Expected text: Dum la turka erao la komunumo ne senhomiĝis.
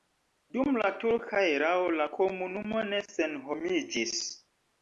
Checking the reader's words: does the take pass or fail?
pass